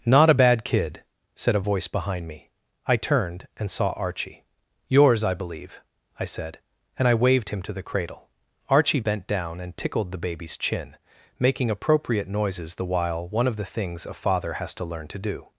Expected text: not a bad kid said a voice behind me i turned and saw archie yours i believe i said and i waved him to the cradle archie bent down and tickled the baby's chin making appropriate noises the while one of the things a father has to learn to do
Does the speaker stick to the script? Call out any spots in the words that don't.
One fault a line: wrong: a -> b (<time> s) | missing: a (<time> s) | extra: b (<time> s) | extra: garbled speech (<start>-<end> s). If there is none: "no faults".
no faults